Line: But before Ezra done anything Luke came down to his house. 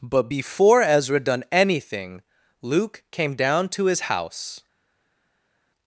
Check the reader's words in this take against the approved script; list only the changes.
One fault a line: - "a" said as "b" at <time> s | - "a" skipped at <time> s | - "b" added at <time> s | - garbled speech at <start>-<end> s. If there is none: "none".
none